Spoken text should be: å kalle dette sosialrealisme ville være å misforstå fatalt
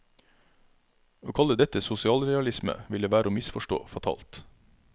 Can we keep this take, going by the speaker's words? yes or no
yes